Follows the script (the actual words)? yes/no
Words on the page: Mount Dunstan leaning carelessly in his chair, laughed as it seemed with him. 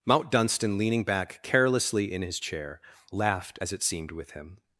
no